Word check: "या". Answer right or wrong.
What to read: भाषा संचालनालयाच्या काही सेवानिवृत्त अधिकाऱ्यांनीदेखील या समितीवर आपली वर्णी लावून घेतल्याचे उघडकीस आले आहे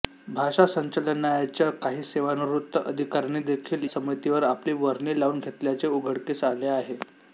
wrong